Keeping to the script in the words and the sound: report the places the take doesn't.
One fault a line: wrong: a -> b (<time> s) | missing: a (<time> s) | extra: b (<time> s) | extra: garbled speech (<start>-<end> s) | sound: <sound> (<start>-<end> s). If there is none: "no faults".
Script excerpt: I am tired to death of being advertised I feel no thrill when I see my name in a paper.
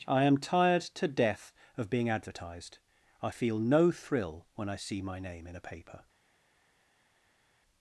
no faults